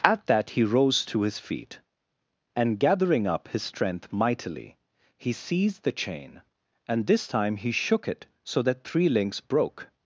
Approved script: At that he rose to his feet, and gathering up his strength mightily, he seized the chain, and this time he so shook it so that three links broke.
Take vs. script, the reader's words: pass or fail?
fail